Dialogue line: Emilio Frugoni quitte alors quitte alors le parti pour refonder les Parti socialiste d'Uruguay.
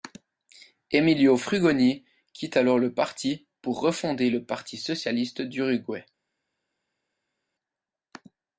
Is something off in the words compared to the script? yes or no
yes